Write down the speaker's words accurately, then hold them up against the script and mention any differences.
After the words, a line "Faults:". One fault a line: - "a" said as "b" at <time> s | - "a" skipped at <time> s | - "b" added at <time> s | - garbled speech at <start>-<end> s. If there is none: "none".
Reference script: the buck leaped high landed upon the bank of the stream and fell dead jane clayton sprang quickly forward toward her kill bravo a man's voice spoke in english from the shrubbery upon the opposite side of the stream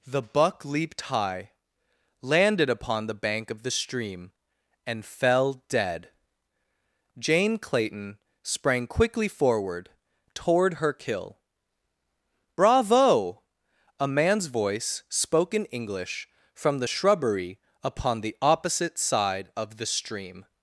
the buck leaped high landed upon the bank of the stream and fell dead jane clayton sprang quickly forward toward her kill bravo a man's voice spoke in english from the shrubbery upon the opposite side of the stream
Faults:
none